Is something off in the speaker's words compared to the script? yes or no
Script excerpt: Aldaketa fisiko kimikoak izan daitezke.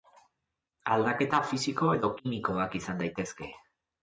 yes